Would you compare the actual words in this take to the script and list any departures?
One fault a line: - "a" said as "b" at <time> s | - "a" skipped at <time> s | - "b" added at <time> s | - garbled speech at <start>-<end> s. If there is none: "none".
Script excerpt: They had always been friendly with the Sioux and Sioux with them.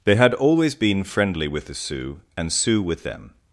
none